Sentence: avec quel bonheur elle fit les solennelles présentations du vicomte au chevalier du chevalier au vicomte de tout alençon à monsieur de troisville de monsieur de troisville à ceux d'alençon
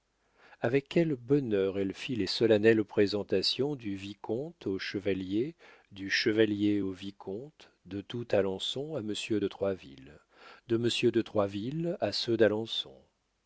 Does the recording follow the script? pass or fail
pass